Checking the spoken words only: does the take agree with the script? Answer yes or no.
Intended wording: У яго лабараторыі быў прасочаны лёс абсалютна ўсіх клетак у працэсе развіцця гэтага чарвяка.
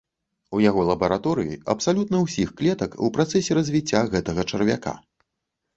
no